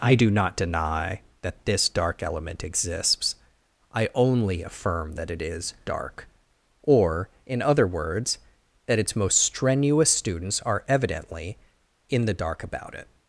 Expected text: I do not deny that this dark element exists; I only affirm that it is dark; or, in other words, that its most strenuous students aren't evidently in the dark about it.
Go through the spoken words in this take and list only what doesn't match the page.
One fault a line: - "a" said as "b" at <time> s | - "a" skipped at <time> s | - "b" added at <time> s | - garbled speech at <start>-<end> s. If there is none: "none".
- "aren't" said as "are" at 10.6 s